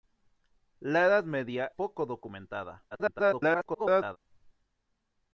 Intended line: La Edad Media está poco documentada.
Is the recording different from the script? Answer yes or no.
yes